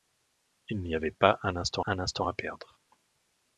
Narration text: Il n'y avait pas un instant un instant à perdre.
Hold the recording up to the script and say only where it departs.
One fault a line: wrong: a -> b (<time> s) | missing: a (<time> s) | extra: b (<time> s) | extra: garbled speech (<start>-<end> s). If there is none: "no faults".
no faults